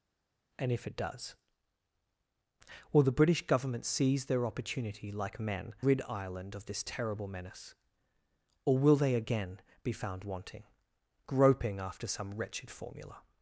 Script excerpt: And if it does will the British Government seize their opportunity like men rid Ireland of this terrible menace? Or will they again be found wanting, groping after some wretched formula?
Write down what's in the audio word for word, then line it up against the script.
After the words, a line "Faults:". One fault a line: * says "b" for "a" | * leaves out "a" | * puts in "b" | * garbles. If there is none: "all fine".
And if it does will the British Government seize their opportunity like men rid Ireland of this terrible menace? Or will they again be found wanting, groping after some wretched formula?
Faults:
all fine